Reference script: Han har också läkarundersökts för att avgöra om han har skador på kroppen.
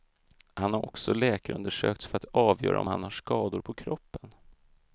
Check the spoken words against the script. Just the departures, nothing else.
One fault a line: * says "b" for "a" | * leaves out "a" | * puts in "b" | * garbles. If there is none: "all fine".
all fine